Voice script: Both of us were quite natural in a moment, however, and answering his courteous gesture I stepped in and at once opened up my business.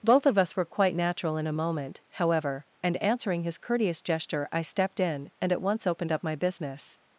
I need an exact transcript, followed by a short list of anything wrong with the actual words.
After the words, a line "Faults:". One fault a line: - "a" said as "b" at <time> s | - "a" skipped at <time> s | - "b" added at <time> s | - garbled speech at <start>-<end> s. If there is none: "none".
Both of us were quite natural in a moment, however, and answering his courteous gesture I stepped in and at once opened up my business.
Faults:
none